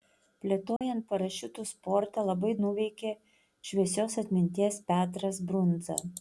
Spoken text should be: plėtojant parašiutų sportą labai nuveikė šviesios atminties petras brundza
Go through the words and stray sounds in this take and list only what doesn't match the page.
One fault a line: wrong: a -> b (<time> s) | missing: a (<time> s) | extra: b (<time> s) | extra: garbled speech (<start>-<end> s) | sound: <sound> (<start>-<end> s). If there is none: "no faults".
sound: dropout (0.8-0.8 s)